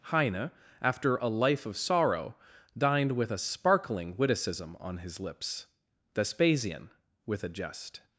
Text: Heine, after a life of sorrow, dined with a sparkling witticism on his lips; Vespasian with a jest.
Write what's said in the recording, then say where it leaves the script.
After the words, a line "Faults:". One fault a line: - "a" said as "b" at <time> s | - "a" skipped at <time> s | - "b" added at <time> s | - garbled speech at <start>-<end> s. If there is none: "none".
Heine, after a life of sorrow, dined with a sparkling witticism on his lips; Vespasian with a jest.
Faults:
none